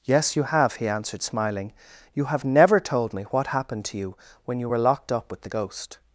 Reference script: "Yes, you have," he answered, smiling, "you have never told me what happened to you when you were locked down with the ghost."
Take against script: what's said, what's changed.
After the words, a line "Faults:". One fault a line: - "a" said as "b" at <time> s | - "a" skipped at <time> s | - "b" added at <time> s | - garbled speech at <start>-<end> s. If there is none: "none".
"Yes, you have," he answered, smiling, "you have never told me what happened to you when you were locked up with the ghost."
Faults:
- "down" said as "up" at 5.1 s